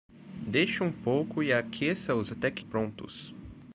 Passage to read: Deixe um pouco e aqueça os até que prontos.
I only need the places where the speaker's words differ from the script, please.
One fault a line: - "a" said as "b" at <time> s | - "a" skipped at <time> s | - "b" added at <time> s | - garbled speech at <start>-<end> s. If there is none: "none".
none